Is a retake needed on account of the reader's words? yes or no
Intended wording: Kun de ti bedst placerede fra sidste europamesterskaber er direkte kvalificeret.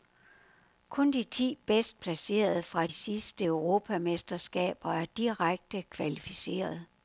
no